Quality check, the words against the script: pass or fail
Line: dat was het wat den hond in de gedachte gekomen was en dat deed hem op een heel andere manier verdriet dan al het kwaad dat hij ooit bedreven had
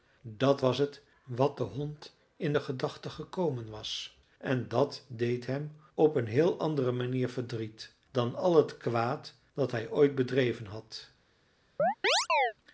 pass